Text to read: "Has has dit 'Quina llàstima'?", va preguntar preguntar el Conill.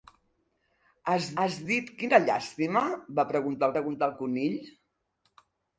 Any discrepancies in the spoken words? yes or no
no